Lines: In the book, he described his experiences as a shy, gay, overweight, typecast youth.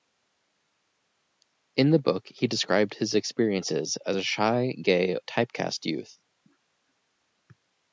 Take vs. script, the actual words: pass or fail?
fail